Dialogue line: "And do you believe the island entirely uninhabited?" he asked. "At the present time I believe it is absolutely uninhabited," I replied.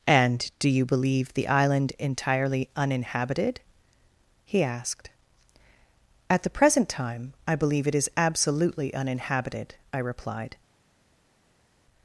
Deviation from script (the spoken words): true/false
false